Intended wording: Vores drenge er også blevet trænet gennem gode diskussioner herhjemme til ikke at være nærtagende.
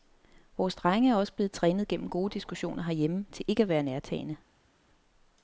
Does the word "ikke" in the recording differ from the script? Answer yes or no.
no